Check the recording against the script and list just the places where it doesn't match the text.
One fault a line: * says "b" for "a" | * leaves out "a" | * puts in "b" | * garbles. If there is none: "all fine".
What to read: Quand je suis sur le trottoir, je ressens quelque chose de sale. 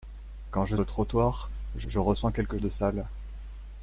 * leaves out "suis sur"
* puts in "je"
* leaves out "chose"